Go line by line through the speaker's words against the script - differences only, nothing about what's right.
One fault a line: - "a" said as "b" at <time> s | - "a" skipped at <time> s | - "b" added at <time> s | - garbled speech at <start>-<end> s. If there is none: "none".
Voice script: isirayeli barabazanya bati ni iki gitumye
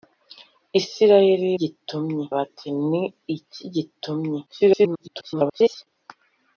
- "barabazanya" said as "gitumye" at 1.6 s
- garbled speech at 4.5-5.9 s